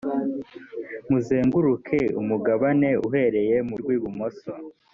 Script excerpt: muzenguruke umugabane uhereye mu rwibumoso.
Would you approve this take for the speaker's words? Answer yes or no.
yes